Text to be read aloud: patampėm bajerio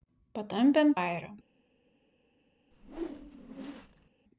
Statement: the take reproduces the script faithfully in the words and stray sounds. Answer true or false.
false